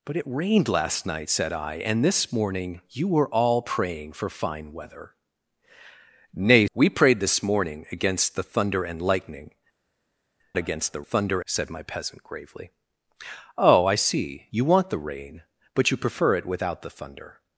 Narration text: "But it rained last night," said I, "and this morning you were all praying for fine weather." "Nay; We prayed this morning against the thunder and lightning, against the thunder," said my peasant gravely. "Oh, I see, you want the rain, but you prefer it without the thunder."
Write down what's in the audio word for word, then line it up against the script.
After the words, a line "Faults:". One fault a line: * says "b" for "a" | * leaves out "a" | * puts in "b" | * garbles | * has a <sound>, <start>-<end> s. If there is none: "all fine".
"But it rained last night," said I, "and this morning you were all praying for fine weather." "Nay; We prayed this morning against the thunder and lightning, against the thunder," said my peasant gravely. "Oh, I see, you want the rain, but you prefer it without the thunder."
Faults:
all fine